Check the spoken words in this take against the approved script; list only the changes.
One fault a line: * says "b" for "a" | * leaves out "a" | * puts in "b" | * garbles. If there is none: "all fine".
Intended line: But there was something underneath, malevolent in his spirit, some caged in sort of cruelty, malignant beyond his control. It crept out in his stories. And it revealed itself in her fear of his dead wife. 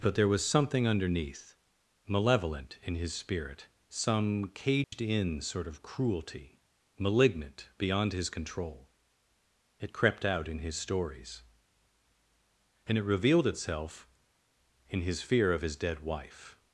* says "his" for "her"